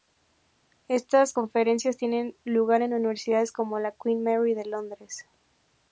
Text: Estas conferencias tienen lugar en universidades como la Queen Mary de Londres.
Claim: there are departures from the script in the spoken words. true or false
false